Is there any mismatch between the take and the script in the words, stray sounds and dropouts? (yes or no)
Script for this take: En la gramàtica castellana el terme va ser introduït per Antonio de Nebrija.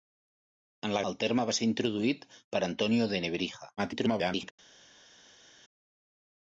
yes